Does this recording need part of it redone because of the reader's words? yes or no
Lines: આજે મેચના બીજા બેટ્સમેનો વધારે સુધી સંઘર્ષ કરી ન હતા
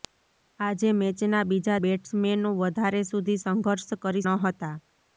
no